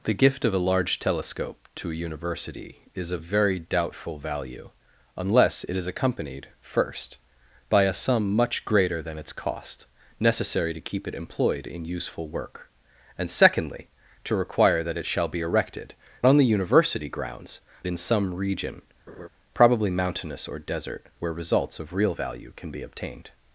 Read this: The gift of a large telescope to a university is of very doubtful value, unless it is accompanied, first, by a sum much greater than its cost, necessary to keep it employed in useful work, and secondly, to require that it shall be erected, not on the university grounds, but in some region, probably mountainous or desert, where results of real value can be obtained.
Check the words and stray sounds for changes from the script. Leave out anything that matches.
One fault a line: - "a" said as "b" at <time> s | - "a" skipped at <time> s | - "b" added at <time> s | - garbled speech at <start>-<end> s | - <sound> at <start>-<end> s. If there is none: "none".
- "not" skipped at 15.9 s
- "but" skipped at 17.6 s
- laugh at 19.1-19.3 s